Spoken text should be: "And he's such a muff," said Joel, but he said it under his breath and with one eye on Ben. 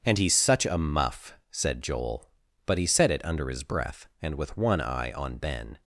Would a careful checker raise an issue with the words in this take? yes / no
no